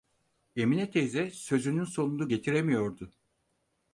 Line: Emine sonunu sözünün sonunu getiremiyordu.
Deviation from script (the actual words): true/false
true